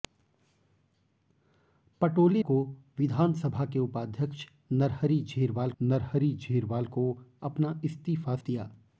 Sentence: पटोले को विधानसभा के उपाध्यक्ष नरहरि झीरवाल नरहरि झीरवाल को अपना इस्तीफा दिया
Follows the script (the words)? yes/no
yes